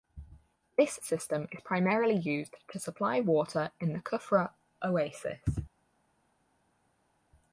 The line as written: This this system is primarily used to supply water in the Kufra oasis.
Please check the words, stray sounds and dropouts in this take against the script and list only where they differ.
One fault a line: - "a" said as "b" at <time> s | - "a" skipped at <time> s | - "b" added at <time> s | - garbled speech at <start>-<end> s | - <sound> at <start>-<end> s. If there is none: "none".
- "this" skipped at 0.9 s